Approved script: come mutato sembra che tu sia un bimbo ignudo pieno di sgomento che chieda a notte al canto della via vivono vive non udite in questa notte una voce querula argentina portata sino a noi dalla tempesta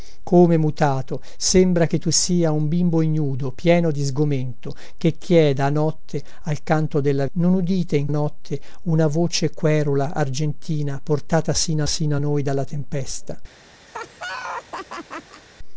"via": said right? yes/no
no